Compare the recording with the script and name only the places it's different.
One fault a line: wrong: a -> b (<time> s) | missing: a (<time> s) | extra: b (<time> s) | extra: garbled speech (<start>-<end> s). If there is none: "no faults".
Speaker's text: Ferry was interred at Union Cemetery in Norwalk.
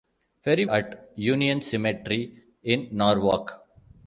missing: was interred (0.7 s)